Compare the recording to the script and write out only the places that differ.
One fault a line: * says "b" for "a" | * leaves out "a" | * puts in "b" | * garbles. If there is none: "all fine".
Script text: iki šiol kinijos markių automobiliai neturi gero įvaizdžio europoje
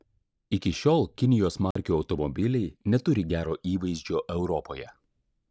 all fine